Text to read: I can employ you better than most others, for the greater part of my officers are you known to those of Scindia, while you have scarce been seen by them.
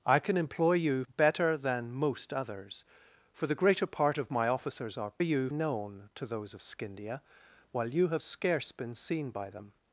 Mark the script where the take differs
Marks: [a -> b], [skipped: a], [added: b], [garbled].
I can employ you better than most others, for the greater part of my officers are you known to those of Scindia, while you have scarce been seen by them.